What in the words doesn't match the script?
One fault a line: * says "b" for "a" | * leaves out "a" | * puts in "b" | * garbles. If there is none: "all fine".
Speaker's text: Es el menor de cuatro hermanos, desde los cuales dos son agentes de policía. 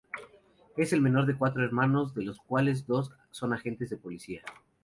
* says "de" for "desde"